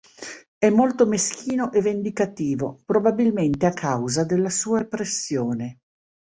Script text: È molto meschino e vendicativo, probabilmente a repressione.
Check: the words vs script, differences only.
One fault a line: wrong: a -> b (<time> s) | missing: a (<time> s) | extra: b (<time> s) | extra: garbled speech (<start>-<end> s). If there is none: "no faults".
extra: causa della sua (3.7 s)